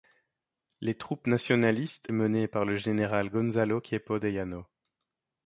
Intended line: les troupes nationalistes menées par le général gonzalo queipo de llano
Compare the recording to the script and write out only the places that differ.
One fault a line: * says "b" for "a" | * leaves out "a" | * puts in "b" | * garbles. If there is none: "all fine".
all fine